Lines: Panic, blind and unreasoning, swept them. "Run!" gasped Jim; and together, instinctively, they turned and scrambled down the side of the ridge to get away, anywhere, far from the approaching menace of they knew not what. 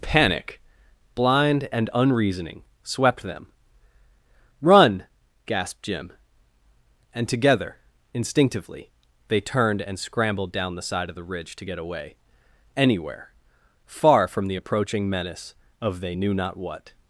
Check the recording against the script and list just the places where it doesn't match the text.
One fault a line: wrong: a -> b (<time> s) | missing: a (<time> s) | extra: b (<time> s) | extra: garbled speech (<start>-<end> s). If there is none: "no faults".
no faults